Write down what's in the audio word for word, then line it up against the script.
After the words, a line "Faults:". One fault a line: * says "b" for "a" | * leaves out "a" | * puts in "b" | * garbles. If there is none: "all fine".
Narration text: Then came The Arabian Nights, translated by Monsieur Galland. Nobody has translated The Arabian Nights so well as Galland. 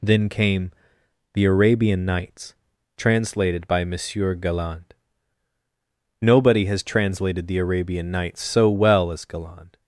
Then came The Arabian Nights, translated by Monsieur Galland. Nobody has translated The Arabian Nights so well as Galland.
Faults:
all fine